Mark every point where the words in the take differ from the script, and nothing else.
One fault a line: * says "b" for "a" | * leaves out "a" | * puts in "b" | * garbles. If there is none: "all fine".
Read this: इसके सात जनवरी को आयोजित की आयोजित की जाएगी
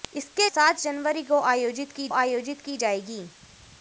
all fine